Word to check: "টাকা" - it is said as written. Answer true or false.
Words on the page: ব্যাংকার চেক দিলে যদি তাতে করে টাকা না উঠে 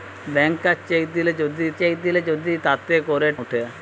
false